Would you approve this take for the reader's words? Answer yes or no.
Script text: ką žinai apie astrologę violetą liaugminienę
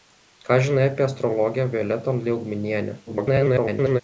no